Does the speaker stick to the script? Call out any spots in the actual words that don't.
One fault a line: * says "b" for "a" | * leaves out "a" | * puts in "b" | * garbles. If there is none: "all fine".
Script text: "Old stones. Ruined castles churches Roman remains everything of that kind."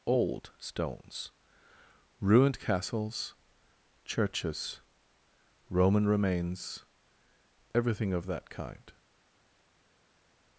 all fine